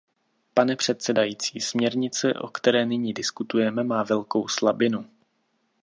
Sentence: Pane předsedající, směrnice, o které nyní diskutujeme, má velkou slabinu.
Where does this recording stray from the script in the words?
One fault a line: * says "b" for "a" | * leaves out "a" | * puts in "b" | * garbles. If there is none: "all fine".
all fine